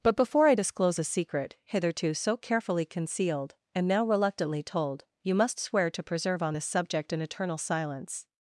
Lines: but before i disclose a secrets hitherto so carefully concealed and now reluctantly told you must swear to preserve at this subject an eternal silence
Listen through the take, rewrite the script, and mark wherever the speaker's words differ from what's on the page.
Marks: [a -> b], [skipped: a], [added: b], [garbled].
but before i disclose a [secrets -> secret] hitherto so carefully concealed and now reluctantly told you must swear to preserve [at -> on] this subject an eternal silence